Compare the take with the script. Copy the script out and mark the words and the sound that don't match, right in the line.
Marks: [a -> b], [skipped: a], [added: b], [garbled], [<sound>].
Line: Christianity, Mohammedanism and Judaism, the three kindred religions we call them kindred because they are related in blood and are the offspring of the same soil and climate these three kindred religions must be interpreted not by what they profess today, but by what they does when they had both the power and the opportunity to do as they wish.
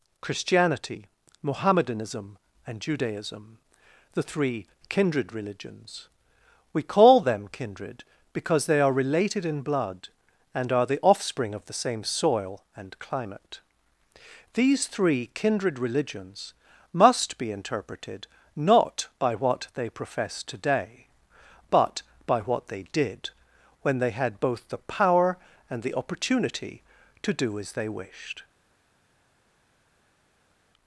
Christianity, Mohammedanism and Judaism, the three kindred religions we call them kindred because they are related in blood and are the offspring of the same soil and climate these three kindred religions must be interpreted not by what they profess today, but by what they [does -> did] when they had both the power and the opportunity to do as they [wish. -> wished]